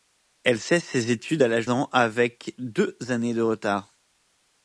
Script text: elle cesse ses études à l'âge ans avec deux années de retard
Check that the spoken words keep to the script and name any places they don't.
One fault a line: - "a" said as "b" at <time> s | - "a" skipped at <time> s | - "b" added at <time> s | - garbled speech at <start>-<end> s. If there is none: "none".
none